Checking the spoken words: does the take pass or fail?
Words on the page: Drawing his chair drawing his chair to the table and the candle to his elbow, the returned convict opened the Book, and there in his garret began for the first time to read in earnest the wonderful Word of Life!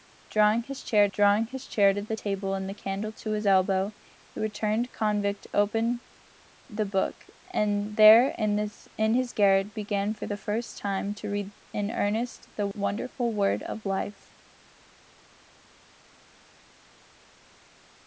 pass